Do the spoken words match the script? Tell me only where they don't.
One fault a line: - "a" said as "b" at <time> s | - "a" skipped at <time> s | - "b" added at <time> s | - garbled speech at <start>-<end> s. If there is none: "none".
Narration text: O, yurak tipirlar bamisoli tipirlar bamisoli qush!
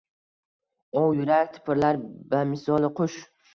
- "tipirlar bamisoli" skipped at 2.9 s